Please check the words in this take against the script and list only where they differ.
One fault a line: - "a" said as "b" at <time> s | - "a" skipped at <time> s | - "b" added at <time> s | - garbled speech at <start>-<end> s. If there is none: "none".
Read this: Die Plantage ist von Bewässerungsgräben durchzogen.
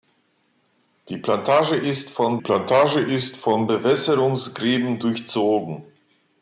- "Plantage ist von" added at 2.4 s